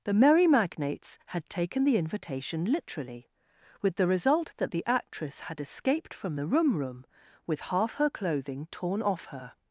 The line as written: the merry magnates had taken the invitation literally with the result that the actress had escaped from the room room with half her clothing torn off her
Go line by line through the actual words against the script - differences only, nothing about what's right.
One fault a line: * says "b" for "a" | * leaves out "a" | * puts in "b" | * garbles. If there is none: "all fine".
all fine